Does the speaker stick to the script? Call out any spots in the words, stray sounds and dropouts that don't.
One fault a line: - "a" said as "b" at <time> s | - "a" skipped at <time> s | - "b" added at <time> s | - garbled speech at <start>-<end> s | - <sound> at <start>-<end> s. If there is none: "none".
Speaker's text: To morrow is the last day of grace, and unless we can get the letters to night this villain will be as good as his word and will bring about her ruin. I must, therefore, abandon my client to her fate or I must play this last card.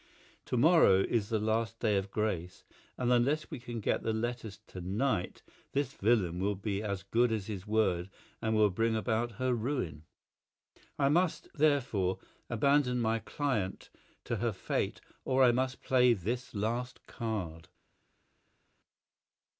none